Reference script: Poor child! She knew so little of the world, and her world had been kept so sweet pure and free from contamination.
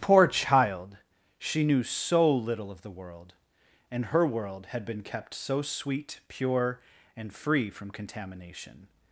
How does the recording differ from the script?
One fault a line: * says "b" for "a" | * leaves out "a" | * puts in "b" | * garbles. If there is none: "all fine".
all fine